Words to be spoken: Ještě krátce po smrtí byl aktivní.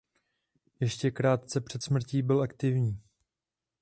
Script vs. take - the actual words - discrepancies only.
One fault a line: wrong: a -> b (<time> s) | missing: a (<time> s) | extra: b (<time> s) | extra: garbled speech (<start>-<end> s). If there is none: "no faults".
wrong: po -> před (1.6 s)